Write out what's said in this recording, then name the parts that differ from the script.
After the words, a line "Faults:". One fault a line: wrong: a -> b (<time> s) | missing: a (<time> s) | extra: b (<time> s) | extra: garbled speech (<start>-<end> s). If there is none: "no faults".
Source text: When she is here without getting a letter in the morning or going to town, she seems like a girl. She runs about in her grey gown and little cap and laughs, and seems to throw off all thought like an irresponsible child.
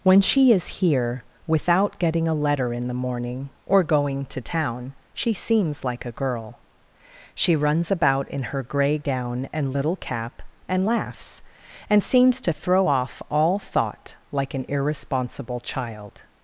When she is here without getting a letter in the morning or going to town, she seems like a girl. She runs about in her grey gown and little cap and laughs, and seems to throw off all thought like an irresponsible child.
Faults:
no faults